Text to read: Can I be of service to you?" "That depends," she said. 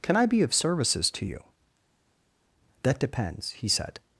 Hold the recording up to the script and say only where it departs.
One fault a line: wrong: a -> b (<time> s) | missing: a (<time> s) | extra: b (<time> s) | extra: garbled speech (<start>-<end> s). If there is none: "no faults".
wrong: service -> services (0.5 s)
wrong: she -> he (3.5 s)